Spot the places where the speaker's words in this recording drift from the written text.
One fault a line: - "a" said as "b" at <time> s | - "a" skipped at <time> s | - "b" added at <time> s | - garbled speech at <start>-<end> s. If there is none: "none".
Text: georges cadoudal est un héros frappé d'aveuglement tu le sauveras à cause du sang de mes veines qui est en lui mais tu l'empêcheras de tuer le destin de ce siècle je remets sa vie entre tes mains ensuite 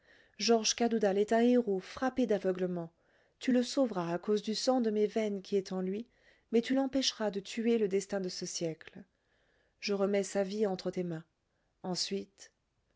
none